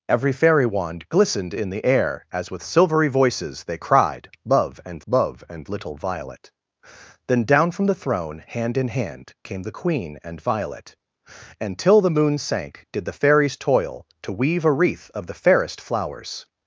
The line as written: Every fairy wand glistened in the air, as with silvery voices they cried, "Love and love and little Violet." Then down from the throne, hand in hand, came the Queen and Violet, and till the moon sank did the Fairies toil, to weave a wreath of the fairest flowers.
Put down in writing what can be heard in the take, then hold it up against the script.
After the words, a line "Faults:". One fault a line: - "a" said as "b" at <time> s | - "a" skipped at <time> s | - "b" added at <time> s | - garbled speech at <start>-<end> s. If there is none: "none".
Every fairy wand glistened in the air, as with silvery voices they cried, "Love and love and little Violet." Then down from the throne, hand in hand, came the Queen and Violet, and till the moon sank did the Fairies toil, to weave a wreath of the fairest flowers.
Faults:
none